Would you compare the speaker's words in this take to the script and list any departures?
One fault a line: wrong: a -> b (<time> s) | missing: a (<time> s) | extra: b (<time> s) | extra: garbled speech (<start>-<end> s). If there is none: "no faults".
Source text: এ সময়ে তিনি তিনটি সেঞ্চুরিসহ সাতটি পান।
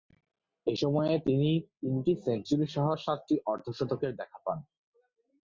extra: অর্ধ শতকের দেখা (3.5 s)